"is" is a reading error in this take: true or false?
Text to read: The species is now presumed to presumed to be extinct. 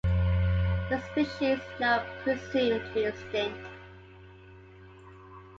false